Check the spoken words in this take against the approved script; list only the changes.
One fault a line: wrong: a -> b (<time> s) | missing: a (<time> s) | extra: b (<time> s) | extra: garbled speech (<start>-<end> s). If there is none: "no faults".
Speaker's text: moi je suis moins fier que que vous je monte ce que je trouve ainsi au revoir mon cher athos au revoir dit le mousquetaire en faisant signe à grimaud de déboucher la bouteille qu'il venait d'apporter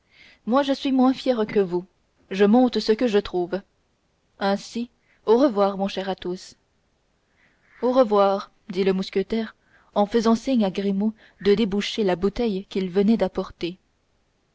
no faults